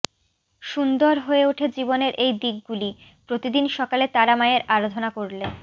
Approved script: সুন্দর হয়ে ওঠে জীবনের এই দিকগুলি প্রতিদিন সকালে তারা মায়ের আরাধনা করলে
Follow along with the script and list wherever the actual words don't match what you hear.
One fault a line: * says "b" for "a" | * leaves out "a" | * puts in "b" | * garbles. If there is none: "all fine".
all fine